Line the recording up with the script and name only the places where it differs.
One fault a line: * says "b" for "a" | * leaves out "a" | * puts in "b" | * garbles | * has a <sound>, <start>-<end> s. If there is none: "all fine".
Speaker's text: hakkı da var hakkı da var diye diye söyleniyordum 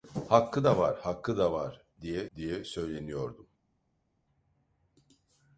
all fine